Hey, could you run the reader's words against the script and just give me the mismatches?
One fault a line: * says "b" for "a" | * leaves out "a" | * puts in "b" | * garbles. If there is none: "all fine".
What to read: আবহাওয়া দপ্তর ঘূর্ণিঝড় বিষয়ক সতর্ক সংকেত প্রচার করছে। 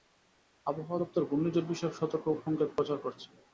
all fine